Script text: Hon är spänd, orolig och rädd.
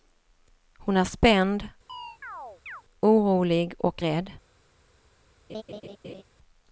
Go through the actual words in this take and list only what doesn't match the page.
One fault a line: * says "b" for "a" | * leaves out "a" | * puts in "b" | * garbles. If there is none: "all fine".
all fine